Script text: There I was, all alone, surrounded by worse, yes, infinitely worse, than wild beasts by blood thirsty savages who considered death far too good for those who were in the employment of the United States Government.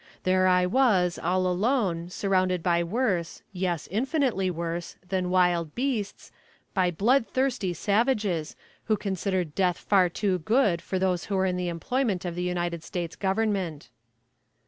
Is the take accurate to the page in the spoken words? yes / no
yes